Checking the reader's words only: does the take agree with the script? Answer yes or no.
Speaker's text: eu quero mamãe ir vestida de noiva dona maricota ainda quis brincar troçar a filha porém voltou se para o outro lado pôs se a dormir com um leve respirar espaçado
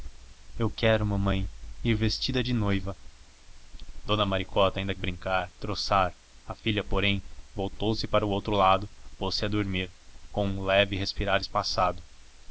no